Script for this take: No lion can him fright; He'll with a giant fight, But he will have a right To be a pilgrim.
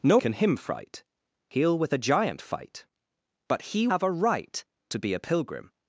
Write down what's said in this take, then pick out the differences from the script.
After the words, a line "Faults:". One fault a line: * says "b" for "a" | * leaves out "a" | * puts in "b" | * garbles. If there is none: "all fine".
No can him fright; He'll with a giant fight, But he have a right To be a pilgrim.
Faults:
* leaves out "lion"
* leaves out "will"